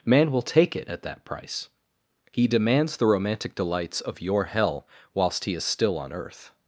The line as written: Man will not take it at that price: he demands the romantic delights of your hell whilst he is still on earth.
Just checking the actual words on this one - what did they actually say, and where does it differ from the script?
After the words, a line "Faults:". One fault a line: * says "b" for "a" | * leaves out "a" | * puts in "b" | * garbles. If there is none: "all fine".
Man will take it at that price: he demands the romantic delights of your hell whilst he is still on earth.
Faults:
* leaves out "not"